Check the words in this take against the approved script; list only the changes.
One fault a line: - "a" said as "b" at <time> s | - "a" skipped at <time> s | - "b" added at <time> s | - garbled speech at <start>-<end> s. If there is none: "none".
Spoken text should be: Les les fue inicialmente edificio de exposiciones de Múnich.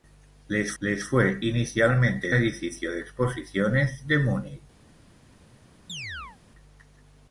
none